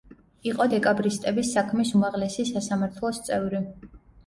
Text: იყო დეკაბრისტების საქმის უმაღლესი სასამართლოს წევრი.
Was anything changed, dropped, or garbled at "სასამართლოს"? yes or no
no